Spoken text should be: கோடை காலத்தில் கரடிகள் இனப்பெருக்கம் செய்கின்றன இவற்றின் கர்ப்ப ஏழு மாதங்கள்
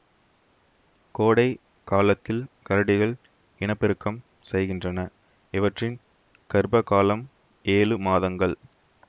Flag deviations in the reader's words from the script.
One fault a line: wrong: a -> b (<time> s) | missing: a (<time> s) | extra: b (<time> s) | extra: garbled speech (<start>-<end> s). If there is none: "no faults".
extra: காலம் (6.8 s)